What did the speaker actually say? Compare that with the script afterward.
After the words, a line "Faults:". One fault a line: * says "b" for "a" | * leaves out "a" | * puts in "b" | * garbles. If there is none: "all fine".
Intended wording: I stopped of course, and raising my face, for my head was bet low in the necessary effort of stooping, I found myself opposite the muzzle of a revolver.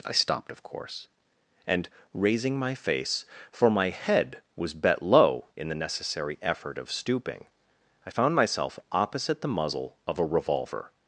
I stopped of course, and raising my face, for my head was bet low in the necessary effort of stooping, I found myself opposite the muzzle of a revolver.
Faults:
all fine